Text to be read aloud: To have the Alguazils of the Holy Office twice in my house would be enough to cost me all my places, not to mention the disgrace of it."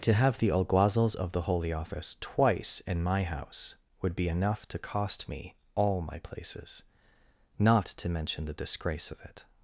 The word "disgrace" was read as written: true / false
true